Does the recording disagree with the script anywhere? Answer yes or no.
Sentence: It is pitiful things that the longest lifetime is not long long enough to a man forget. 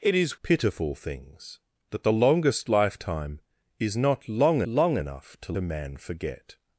no